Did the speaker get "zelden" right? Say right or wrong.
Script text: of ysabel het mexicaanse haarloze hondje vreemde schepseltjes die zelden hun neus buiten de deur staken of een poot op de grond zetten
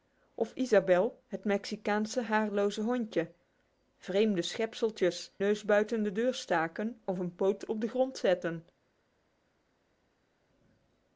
wrong